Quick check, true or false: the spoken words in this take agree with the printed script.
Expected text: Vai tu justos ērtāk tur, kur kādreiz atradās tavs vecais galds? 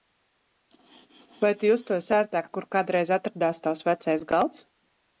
false